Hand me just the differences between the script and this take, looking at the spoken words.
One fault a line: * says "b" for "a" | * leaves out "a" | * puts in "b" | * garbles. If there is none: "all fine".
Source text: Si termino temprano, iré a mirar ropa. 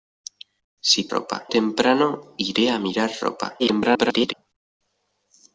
* says "ropa" for "termino"
* garbles